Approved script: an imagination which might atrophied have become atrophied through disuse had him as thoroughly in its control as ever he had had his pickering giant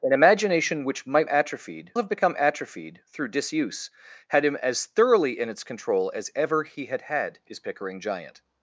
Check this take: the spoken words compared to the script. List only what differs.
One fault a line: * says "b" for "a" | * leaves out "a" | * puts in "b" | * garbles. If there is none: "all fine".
all fine